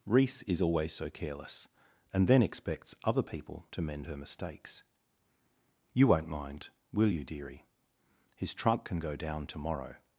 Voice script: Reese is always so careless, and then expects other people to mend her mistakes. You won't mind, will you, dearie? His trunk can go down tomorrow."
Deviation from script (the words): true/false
false